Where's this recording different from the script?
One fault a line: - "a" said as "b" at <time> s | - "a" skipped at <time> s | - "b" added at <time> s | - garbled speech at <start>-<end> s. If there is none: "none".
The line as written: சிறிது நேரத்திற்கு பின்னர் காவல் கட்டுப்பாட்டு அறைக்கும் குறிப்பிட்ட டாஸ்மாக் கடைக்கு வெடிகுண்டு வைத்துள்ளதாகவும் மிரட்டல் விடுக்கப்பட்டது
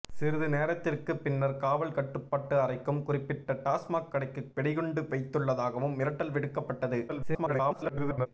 - garbled speech at 7.1-8.3 s